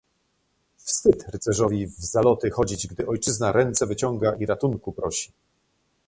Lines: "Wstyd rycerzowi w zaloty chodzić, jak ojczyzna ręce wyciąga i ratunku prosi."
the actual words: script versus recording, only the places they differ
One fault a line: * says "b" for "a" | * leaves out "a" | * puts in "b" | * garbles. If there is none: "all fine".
* says "gdy" for "jak"